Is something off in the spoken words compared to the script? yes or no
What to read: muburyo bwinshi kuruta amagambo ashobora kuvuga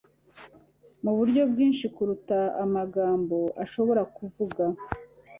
no